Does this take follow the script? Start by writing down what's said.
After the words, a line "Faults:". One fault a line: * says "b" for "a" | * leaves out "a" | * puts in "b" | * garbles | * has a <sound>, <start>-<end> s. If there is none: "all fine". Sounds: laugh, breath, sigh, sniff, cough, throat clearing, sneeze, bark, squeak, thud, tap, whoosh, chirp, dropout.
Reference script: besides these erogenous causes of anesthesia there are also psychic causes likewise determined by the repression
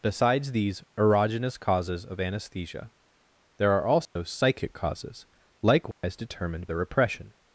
besides these erogenous causes of anesthesia there are also psychic causes likewise determined the repression
Faults:
* has a dropout, 4.0-4.2 s
* has a dropout, 5.9-6.0 s
* leaves out "by"